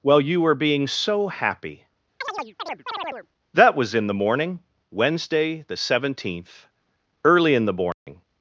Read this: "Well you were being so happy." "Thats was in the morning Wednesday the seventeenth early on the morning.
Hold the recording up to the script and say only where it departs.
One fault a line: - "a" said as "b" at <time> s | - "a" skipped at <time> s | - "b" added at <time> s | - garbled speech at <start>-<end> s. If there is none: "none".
- "Thats" said as "That" at 3.5 s
- "on" said as "in" at 7.5 s